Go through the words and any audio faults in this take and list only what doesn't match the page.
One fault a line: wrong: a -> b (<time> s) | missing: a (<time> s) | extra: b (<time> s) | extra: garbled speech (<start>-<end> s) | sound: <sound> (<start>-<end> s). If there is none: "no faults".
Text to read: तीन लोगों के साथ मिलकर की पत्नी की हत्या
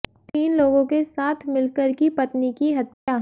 sound: dropout (2.9-3.1 s)